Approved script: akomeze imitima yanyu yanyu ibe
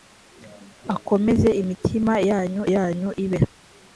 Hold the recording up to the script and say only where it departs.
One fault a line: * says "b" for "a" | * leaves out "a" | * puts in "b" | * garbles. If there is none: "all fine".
all fine